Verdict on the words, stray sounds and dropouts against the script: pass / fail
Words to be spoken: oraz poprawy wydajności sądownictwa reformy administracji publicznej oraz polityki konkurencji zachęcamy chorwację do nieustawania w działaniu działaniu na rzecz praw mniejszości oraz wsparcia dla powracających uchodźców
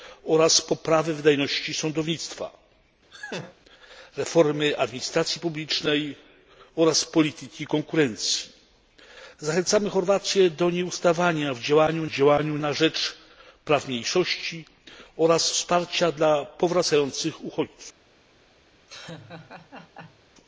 fail